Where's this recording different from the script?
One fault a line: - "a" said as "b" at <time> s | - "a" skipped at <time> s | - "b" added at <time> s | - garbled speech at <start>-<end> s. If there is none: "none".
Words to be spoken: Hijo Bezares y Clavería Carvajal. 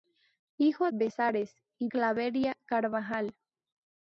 none